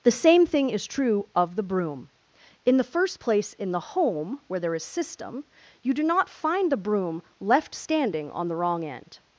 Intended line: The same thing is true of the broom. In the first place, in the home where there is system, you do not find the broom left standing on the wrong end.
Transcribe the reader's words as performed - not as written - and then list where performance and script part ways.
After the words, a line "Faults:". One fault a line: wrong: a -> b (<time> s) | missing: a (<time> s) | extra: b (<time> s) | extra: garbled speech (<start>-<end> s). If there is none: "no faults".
The same thing is true of the broom. In the first place, in the home where there is system, you do not find the broom left standing on the wrong end.
Faults:
no faults